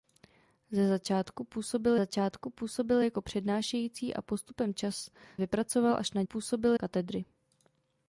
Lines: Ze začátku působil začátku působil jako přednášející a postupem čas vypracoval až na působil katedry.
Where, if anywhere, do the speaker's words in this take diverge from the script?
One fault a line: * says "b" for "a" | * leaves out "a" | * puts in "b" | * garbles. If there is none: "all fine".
all fine